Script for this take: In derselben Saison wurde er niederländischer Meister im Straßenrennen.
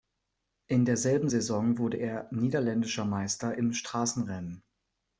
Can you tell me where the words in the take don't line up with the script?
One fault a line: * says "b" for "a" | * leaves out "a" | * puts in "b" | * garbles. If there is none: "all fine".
all fine